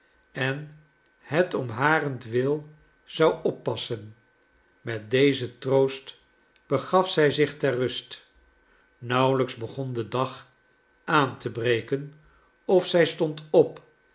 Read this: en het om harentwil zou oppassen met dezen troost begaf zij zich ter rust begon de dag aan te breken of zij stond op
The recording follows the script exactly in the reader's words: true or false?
false